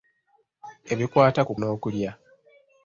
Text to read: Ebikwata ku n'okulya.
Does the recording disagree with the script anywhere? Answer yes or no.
no